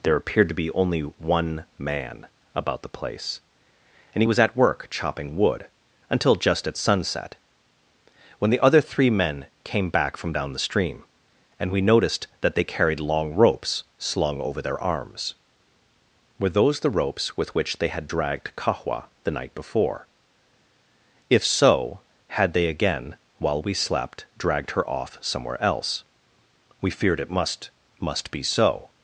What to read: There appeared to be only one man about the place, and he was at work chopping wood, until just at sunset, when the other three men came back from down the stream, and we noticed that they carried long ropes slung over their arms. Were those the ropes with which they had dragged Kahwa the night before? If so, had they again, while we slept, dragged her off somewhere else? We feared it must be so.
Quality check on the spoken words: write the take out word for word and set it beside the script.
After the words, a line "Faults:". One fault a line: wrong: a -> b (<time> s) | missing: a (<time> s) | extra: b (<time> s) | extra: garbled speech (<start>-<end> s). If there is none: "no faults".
There appeared to be only one man about the place, and he was at work chopping wood, until just at sunset, when the other three men came back from down the stream, and we noticed that they carried long ropes slung over their arms. Were those the ropes with which they had dragged Kahwa the night before? If so, had they again, while we slept, dragged her off somewhere else? We feared it must must be so.
Faults:
extra: must (28.0 s)